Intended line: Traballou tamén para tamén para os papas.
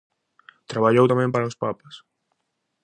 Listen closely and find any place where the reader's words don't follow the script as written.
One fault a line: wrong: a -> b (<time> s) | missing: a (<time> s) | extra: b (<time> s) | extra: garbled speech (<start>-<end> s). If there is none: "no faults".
missing: tamén para (1.5 s)